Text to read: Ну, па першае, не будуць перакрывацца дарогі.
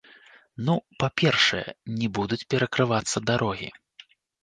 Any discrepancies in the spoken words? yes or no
no